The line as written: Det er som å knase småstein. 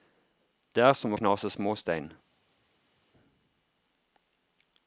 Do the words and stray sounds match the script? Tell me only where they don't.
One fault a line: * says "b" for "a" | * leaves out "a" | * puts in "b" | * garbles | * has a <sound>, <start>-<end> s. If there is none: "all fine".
all fine